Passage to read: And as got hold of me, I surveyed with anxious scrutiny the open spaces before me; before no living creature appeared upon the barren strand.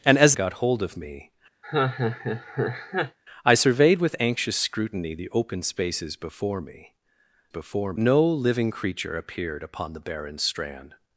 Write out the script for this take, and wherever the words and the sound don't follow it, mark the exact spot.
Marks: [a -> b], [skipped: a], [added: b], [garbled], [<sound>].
And as got hold of me, [laugh] I surveyed with anxious scrutiny the open spaces before me; before no living creature appeared upon the barren strand.